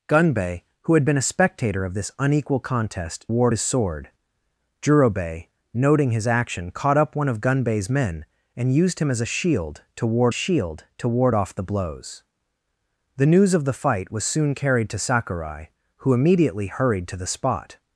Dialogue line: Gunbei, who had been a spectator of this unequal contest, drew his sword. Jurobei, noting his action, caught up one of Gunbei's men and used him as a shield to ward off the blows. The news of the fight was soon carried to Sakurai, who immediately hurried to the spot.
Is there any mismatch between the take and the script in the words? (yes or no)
yes